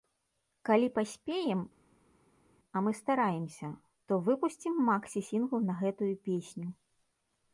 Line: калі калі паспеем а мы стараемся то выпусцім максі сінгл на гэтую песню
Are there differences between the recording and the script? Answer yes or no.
yes